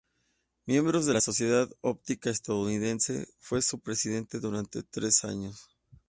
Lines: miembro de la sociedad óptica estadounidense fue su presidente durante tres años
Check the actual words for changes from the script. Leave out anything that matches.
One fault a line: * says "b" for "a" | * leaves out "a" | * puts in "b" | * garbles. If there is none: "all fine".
all fine